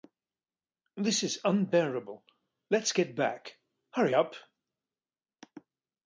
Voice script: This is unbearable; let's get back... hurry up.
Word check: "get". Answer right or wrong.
right